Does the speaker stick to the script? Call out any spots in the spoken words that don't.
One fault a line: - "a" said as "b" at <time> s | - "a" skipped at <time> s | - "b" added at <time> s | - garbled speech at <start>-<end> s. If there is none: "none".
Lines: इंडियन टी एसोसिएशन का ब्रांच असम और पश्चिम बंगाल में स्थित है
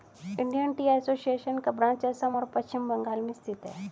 none